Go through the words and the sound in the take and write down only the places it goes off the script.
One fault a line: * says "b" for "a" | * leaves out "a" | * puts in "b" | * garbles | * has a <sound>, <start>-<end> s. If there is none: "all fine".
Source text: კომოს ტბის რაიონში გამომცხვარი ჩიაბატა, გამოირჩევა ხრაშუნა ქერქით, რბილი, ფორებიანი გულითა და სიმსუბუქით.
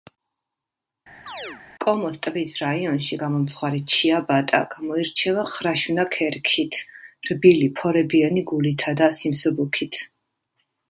* has a chirp, 1.3-1.6 s